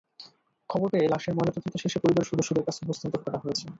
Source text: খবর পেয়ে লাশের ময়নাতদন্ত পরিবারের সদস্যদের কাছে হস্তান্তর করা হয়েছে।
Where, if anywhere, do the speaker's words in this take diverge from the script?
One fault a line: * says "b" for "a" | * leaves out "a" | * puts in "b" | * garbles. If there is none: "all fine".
* puts in "শেষে"